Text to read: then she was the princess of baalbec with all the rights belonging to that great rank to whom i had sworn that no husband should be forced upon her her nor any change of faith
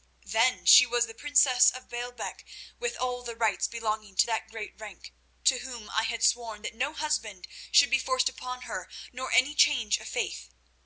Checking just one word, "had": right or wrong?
right